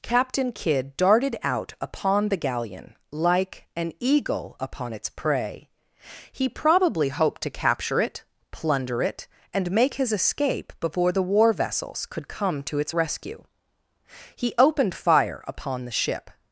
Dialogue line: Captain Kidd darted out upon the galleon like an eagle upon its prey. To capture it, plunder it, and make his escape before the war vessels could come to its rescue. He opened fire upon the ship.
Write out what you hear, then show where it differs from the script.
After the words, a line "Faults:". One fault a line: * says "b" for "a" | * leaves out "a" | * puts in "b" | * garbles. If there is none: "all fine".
Captain Kidd darted out upon the galleon like an eagle upon its prey. He probably hoped to capture it, plunder it, and make his escape before the war vessels could come to its rescue. He opened fire upon the ship.
Faults:
* puts in "He probably hoped"